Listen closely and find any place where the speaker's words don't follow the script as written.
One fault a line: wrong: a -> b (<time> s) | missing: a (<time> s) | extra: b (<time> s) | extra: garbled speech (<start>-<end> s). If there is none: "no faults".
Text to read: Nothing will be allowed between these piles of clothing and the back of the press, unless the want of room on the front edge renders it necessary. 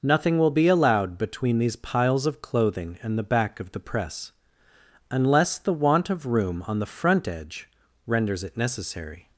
no faults